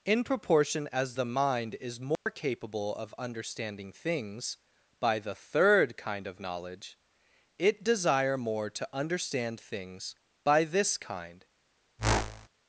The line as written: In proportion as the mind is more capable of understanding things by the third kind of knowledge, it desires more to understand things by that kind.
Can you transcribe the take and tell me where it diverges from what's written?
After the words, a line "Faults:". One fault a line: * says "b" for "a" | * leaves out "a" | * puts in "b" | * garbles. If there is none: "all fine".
In proportion as the mind is more capable of understanding things by the third kind of knowledge, it desire more to understand things by this kind.
Faults:
* says "desire" for "desires"
* says "this" for "that"